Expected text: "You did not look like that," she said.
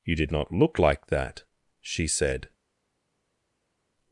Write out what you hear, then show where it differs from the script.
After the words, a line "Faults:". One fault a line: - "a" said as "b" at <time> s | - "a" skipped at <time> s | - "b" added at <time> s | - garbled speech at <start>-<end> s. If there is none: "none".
"You did not look like that," she said.
Faults:
none